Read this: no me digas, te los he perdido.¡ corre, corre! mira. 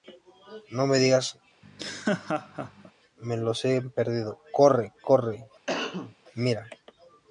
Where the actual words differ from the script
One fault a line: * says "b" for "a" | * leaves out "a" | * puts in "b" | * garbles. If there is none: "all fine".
* says "me" for "te"